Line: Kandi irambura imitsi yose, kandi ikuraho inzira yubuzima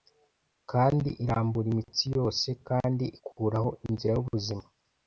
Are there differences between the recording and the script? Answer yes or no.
no